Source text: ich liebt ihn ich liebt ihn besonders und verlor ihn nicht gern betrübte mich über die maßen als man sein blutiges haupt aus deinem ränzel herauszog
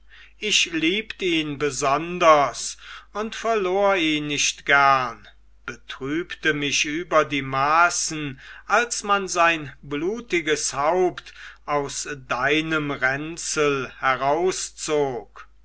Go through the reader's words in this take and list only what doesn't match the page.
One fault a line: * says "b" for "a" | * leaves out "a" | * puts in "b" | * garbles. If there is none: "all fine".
* leaves out "ich liebt ihn"